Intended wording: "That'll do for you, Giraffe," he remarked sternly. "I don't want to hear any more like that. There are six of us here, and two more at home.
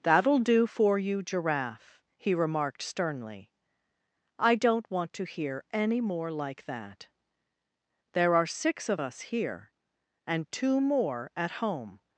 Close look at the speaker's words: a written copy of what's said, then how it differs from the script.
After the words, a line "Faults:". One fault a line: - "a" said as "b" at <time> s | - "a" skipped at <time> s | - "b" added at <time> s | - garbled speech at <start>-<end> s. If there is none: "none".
"That'll do for you, Giraffe," he remarked sternly. "I don't want to hear any more like that. There are six of us here, and two more at home.
Faults:
none